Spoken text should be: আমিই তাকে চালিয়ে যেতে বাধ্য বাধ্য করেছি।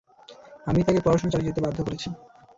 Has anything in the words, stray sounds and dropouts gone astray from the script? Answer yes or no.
yes